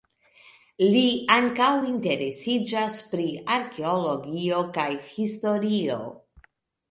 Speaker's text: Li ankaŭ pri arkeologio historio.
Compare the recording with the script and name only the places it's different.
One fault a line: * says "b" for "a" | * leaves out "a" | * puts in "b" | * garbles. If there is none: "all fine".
* puts in "interesiĝas"
* puts in "kaj"